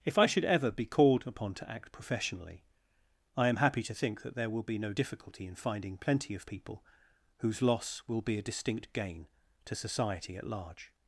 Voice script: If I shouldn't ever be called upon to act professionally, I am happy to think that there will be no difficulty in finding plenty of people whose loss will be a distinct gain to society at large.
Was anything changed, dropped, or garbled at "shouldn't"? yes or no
yes